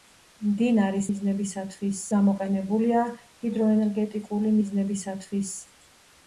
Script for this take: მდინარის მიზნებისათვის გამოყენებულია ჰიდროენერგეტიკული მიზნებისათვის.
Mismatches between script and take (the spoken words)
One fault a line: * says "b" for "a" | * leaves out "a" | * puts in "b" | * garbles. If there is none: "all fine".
all fine